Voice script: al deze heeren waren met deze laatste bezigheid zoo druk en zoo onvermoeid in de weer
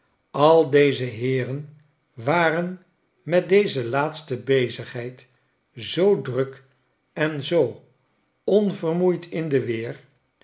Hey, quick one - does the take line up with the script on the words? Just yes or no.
yes